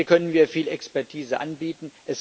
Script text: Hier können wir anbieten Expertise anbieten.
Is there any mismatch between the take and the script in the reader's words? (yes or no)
yes